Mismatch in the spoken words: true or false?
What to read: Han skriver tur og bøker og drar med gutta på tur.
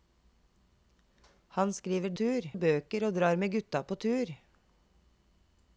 false